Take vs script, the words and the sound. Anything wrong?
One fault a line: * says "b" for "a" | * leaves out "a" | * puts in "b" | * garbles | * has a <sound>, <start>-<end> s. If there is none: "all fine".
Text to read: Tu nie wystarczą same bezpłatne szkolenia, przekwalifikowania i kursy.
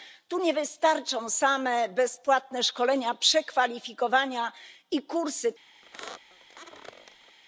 * has a squeak, 5.8-7.4 s